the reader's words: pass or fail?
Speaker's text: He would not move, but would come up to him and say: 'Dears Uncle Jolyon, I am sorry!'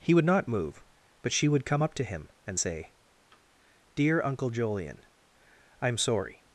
fail